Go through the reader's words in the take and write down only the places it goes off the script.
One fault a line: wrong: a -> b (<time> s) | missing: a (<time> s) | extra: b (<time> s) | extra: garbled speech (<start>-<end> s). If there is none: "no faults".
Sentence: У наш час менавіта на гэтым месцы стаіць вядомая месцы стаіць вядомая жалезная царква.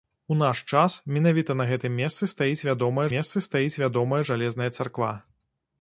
no faults